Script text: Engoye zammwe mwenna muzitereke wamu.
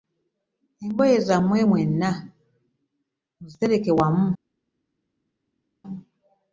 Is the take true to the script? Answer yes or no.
yes